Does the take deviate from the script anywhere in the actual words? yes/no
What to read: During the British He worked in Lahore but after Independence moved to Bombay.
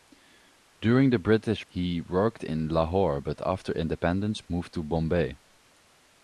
no